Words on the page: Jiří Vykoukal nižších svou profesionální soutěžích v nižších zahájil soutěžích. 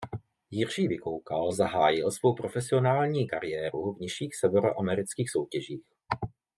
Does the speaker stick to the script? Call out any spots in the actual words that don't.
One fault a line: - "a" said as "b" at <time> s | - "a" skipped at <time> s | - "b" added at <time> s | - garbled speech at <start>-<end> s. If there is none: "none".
- "nižších" said as "zahájil" at 1.5 s
- "soutěžích" said as "kariéru" at 3.3 s
- "zahájil" said as "severoamerických" at 4.3 s